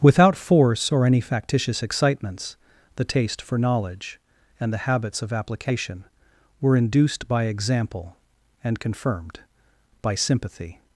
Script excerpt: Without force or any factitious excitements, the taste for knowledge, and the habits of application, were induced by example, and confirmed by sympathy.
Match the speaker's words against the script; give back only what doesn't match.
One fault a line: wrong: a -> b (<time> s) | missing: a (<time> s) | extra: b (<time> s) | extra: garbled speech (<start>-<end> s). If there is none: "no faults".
no faults